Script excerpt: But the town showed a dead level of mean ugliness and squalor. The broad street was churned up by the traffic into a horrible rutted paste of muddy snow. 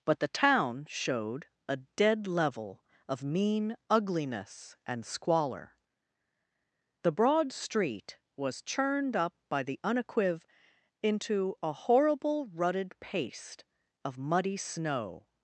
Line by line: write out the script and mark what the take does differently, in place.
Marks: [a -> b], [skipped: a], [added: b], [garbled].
But the town showed a dead level of mean ugliness and squalor. The broad street was churned up by the [traffic -> unequiv] into a horrible rutted paste of muddy snow.